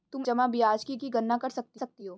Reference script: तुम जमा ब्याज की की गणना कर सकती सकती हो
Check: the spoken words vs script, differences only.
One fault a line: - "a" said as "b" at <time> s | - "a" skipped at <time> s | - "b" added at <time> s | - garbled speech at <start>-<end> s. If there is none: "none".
none